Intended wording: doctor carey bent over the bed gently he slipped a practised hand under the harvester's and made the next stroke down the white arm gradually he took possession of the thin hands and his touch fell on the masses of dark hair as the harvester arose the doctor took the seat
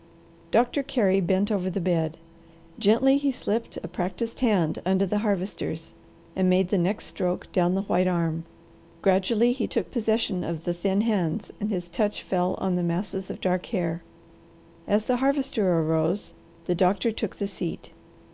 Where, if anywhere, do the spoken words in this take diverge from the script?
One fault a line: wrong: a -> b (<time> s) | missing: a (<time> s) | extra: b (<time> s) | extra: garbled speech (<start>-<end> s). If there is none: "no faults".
no faults